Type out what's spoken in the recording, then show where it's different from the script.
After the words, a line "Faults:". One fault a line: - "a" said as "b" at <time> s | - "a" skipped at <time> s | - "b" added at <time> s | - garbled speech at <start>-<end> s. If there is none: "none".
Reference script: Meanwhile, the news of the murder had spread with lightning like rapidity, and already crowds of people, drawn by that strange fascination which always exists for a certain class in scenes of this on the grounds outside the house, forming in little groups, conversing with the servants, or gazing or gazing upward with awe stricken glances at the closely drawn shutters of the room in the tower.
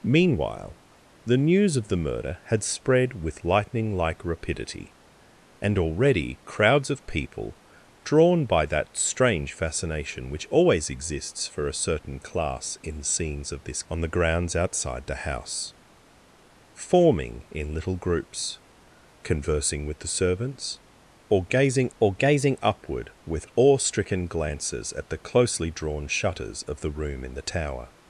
Meanwhile, the news of the murder had spread with lightning like rapidity, and already crowds of people, drawn by that strange fascination which always exists for a certain class in scenes of this on the grounds outside the house, forming in little groups, conversing with the servants, or gazing or gazing upward with awe stricken glances at the closely drawn shutters of the room in the tower.
Faults:
none